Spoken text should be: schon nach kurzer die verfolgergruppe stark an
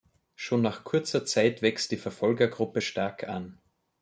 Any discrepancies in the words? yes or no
yes